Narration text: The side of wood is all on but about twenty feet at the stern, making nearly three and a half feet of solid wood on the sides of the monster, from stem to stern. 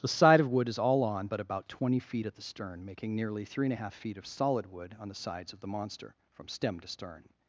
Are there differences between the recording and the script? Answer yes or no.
no